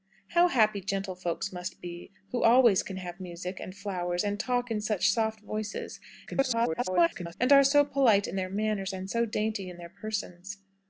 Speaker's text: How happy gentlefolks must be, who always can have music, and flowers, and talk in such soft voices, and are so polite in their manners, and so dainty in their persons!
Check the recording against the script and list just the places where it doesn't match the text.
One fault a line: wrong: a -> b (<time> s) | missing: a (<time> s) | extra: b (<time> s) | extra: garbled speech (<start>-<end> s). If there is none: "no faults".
extra: garbled speech (6.3-7.3 s)